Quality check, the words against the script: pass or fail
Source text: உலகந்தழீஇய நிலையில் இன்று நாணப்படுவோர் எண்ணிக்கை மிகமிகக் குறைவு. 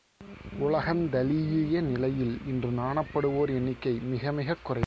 pass